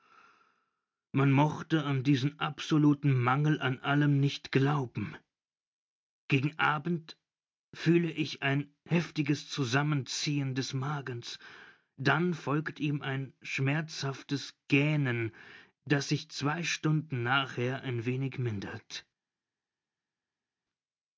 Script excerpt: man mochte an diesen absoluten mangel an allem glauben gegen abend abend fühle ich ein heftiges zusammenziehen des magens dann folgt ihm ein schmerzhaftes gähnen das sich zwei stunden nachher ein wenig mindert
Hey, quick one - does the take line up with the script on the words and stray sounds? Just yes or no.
no